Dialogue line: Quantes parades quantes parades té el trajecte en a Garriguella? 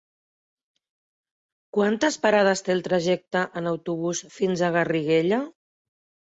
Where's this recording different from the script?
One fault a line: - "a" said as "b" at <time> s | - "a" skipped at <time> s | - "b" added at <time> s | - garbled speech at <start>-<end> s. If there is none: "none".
- "quantes parades" skipped at 2.6 s
- "autobús fins" added at 3.7 s